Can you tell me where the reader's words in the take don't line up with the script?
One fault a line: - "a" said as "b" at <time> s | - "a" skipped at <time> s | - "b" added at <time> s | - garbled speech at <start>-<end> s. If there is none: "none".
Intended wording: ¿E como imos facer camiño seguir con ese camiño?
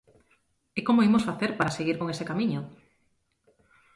- "camiño" said as "para" at 1.6 s